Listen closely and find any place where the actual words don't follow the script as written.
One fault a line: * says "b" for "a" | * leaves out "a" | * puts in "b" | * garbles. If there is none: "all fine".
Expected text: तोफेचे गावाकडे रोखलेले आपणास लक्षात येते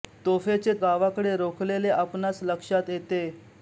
all fine